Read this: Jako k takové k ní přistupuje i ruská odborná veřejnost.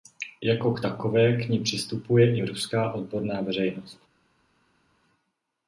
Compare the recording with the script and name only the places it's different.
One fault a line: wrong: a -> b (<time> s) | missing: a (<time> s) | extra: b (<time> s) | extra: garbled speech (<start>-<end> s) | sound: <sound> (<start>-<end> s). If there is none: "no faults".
no faults